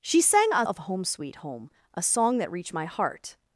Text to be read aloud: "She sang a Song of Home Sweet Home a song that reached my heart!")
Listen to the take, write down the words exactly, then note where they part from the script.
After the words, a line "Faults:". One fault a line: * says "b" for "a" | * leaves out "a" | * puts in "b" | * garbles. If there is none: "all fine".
"She sang a Of Home Sweet Home a song that reached my heart!")
Faults:
* leaves out "Song"